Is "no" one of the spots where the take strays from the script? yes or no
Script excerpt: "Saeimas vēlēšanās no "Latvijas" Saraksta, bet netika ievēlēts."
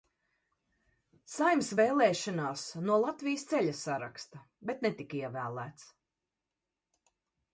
no